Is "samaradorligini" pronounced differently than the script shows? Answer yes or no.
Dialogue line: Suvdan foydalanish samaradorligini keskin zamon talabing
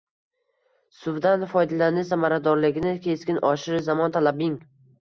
no